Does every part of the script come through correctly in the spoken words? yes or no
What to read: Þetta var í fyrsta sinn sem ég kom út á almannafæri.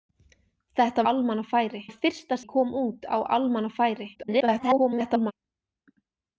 no